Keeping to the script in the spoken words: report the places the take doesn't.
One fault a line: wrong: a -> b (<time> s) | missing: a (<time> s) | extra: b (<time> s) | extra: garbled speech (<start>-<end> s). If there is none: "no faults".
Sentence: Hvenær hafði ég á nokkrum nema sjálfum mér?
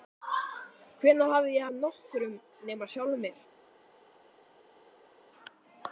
no faults